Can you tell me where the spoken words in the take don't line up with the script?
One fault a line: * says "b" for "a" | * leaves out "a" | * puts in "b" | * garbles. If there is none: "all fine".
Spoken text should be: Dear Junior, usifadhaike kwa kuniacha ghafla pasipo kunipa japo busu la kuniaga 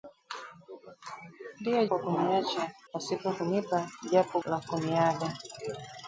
* leaves out "Junior usifadhaike"
* leaves out "ghafla"
* leaves out "busu"